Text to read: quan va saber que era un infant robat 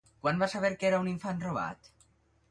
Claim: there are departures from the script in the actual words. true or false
false